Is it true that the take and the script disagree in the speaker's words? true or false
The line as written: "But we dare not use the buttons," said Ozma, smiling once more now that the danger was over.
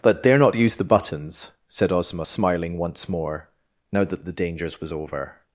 true